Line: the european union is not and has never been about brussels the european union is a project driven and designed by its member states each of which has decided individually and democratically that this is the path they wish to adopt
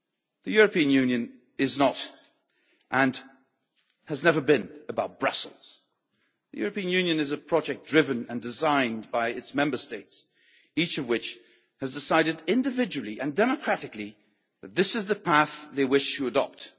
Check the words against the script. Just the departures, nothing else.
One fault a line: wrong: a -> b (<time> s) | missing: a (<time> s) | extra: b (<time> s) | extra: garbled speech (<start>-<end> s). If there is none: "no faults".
no faults